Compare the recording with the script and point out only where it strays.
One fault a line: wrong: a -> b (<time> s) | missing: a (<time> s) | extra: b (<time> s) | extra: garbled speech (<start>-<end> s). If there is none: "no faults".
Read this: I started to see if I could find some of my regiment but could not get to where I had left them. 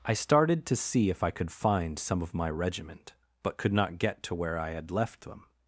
no faults